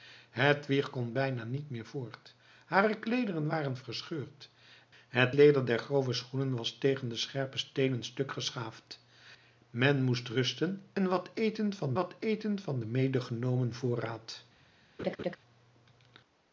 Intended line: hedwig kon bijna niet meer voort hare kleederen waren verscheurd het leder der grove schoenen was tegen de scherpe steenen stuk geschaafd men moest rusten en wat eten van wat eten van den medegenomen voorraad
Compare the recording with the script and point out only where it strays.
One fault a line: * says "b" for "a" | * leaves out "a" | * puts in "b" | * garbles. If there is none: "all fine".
all fine